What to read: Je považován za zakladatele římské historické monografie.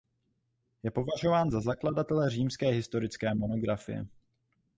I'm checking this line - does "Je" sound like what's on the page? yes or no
yes